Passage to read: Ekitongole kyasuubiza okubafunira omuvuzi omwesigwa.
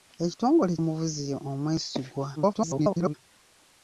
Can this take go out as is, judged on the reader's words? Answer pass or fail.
fail